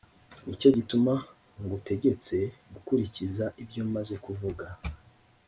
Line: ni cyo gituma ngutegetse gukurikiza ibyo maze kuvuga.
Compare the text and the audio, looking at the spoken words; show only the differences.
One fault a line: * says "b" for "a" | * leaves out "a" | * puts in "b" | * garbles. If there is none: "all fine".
all fine